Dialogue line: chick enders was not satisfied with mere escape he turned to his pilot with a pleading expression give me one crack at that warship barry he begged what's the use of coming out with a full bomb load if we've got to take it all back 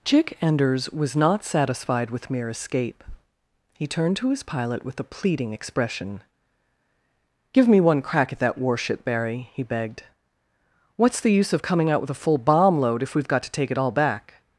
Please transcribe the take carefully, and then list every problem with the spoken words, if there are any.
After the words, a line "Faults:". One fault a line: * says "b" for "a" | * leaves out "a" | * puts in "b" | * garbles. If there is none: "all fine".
chick enders was not satisfied with mere escape he turned to his pilot with a pleading expression give me one crack at that warship barry he begged what's the use of coming out with a full bomb load if we've got to take it all back
Faults:
all fine